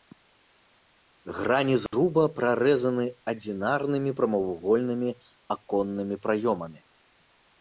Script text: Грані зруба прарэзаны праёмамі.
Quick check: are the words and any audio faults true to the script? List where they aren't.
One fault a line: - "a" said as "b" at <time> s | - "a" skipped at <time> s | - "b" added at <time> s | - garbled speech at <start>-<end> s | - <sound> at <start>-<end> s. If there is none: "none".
- dropout at 1.9-1.9 s
- "адзінарнымі прамавугольнымі аконнымі" added at 3.3 s